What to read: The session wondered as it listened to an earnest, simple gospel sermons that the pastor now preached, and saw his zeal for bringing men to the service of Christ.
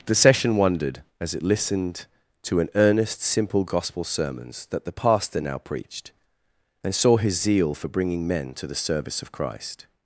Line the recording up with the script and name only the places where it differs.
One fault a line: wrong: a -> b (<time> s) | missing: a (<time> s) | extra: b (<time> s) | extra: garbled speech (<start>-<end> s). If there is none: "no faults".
no faults